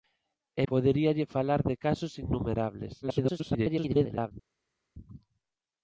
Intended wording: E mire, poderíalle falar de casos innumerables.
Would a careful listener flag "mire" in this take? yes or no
yes